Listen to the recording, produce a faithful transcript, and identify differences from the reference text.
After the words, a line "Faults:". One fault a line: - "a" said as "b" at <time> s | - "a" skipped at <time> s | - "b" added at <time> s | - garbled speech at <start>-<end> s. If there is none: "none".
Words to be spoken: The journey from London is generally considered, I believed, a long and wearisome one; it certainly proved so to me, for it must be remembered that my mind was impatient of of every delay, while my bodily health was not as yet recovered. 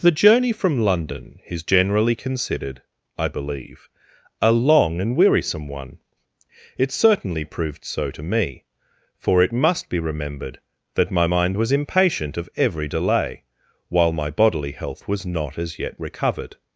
The journey from London is generally considered, I believe, a long and wearisome one; it certainly proved so to me, for it must be remembered that my mind was impatient of every delay, while my bodily health was not as yet recovered.
Faults:
- "believed" said as "believe" at 3.3 s
- "of" skipped at 12.5 s